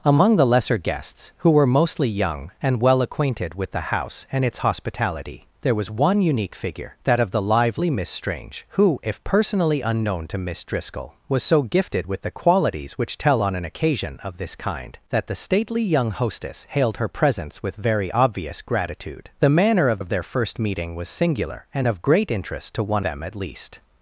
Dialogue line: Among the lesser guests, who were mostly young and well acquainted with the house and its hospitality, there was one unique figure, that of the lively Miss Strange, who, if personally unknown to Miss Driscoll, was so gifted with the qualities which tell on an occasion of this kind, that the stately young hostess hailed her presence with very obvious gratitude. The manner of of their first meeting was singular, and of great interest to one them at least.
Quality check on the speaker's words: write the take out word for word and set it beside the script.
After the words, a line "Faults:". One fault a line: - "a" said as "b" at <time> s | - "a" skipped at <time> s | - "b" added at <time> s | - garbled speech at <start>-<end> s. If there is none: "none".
Among the lesser guests, who were mostly young and well acquainted with the house and its hospitality, there was one unique figure, that of the lively Miss Strange, who, if personally unknown to Miss Driscoll, was so gifted with the qualities which tell on an occasion of this kind, that the stately young hostess hailed her presence with very obvious gratitude. The manner of of their first meeting was singular, and of great interest to one them at least.
Faults:
none